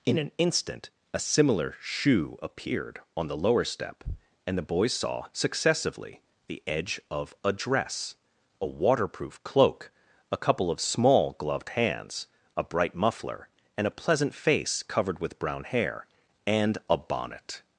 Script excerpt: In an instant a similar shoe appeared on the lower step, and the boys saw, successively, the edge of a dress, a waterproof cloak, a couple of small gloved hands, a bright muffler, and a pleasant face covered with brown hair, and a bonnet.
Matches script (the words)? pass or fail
pass